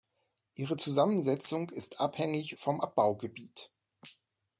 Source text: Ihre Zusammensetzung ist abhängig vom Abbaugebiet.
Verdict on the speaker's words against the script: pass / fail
pass